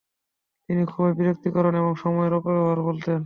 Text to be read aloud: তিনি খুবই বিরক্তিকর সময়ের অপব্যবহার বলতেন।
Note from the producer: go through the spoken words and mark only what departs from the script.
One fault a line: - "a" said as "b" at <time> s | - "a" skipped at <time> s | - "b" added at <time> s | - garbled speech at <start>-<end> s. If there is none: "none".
- "এবং" added at 1.7 s